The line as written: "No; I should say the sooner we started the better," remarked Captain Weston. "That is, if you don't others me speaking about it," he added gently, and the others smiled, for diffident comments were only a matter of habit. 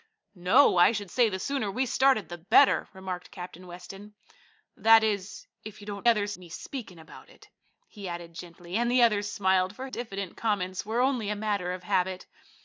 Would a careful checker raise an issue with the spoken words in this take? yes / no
no